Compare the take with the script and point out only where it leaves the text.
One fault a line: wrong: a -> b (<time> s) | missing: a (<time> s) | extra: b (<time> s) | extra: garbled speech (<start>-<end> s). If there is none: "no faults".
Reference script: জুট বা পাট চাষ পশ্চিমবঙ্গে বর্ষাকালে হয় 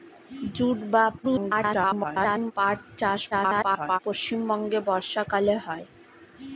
extra: garbled speech (1.2-2.5 s)
extra: garbled speech (3.3-4.0 s)